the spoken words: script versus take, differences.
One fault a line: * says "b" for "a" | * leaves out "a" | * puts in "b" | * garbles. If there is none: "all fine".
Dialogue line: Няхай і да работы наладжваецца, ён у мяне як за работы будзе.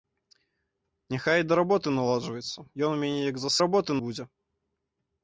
all fine